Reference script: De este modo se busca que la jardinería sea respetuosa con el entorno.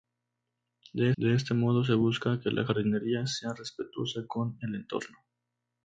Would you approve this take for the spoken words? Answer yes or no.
no